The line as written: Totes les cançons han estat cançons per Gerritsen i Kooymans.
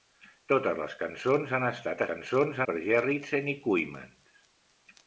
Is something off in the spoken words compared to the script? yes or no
no